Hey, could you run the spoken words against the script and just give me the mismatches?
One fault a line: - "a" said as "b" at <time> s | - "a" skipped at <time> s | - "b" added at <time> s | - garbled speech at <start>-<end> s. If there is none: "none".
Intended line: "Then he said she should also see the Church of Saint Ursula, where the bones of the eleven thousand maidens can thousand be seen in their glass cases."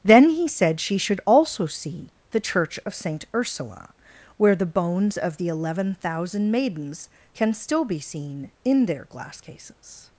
- "thousand" said as "still" at 7.5 s